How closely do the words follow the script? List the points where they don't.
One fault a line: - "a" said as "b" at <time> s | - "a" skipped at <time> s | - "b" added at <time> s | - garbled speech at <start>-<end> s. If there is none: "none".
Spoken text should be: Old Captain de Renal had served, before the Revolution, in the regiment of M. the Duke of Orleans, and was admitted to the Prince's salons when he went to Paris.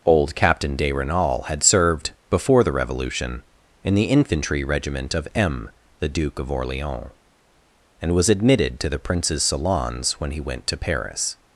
- "infantry" added at 4.0 s